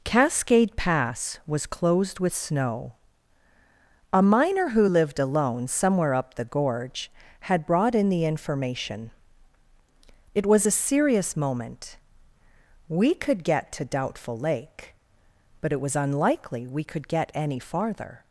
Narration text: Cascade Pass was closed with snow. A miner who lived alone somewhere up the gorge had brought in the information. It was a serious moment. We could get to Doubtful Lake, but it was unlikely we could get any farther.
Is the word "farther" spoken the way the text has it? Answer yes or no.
yes